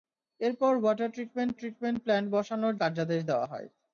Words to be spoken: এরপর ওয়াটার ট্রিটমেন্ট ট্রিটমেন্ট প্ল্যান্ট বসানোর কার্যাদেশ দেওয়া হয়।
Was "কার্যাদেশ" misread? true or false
false